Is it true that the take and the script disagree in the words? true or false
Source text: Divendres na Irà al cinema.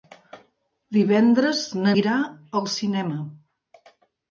false